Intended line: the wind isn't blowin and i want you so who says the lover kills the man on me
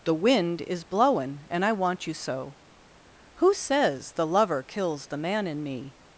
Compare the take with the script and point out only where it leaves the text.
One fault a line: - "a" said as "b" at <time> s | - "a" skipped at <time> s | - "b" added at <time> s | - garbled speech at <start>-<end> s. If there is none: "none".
- "isn't" said as "is" at 0.6 s
- "on" said as "in" at 5.5 s